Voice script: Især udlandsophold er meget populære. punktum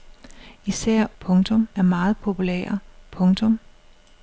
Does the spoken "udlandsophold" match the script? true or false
false